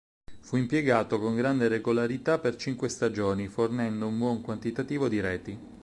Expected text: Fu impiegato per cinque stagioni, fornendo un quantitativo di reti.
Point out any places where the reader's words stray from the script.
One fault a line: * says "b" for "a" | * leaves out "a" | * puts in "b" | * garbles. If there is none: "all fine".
* puts in "con grande regolarità"
* puts in "buon"